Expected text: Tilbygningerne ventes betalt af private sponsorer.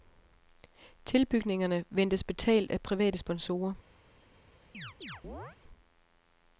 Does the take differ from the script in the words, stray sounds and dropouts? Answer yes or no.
yes